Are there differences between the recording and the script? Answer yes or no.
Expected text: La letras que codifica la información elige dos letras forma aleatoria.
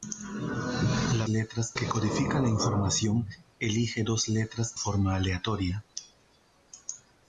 no